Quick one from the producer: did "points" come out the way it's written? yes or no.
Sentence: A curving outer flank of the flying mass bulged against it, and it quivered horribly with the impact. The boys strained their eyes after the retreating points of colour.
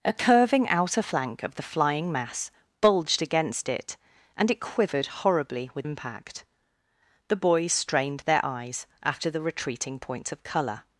yes